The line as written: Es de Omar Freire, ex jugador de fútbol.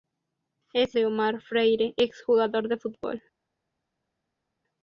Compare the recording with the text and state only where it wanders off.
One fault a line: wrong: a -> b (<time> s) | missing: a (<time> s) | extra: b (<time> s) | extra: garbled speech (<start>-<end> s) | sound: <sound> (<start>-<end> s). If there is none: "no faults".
no faults